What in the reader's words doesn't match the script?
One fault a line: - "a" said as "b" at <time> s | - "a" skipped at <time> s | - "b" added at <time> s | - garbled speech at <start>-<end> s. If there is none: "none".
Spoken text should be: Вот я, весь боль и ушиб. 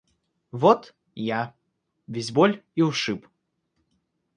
none